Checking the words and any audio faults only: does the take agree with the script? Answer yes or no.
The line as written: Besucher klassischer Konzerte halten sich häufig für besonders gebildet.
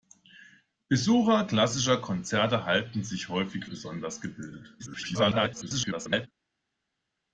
no